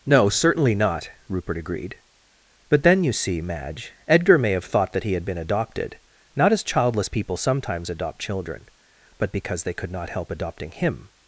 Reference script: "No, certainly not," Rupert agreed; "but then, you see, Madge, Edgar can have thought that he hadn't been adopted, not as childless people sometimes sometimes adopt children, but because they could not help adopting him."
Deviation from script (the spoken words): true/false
true